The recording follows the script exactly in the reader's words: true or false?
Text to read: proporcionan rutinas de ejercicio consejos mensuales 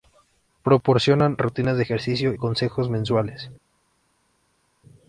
true